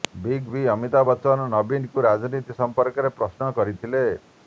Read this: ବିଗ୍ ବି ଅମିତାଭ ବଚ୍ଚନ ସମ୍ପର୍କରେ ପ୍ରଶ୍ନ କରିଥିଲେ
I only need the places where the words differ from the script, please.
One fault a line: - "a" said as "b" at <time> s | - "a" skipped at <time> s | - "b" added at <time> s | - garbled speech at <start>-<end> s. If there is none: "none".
- "ନବୀନଙ୍କୁ ରାଜନୀତି" added at 1.5 s